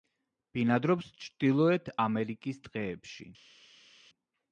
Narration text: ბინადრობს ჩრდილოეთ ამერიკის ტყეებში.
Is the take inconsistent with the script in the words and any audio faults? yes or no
no